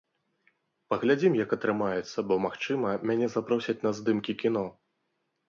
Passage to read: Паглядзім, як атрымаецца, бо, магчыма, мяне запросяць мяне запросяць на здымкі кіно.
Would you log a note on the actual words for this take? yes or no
yes